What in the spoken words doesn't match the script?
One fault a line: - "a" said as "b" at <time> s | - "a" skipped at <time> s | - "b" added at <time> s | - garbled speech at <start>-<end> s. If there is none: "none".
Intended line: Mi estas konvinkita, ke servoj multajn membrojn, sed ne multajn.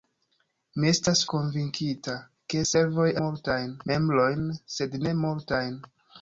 none